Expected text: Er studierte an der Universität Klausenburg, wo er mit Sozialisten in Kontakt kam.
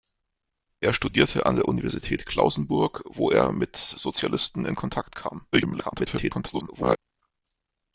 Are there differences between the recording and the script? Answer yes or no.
yes